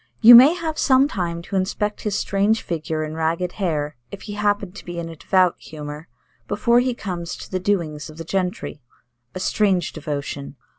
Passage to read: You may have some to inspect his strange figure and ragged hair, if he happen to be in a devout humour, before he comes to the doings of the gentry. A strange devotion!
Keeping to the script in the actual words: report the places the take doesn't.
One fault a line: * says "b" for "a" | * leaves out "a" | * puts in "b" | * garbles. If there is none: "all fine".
* puts in "time"